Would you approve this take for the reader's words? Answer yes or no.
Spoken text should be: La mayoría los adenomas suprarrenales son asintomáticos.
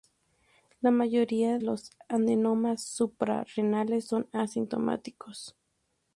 yes